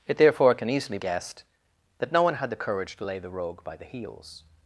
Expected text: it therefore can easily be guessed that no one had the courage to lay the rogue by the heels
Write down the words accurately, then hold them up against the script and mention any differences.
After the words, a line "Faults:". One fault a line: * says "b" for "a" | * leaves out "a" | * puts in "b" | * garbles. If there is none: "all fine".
it therefore can easily guessed that no one had the courage to lay the rogue by the heels
Faults:
* leaves out "be"